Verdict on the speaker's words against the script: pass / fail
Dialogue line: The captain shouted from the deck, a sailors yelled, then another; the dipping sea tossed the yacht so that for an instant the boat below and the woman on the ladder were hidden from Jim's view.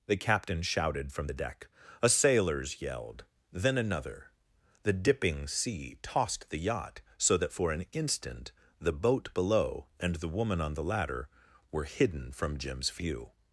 pass